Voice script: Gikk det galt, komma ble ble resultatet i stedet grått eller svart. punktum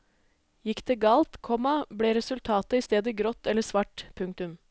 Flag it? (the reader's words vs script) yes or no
yes